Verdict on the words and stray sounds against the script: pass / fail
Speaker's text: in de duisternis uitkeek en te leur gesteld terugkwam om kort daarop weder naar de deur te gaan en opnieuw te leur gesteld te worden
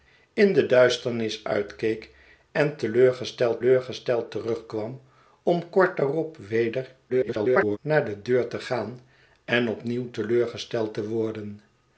fail